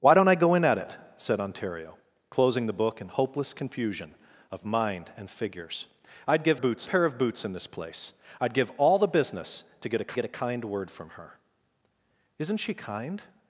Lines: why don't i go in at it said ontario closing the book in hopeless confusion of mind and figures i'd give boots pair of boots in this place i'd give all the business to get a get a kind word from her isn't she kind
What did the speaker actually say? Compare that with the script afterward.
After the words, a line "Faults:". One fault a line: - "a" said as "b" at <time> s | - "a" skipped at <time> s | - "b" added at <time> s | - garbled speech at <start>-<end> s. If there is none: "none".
why don't i go in at it said ontario closing the book in hopeless confusion of mind and figures i'd give boots pair of boots in this place i'd give all the business to get a get a kind word from her isn't she kind
Faults:
none